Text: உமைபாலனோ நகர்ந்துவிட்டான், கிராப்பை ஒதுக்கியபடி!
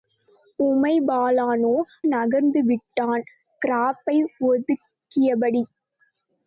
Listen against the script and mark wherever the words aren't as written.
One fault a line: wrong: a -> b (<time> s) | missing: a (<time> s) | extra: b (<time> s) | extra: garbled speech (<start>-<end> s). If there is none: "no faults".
no faults